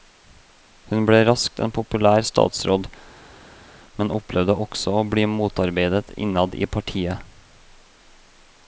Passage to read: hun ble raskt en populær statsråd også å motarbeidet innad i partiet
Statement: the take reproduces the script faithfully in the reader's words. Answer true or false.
false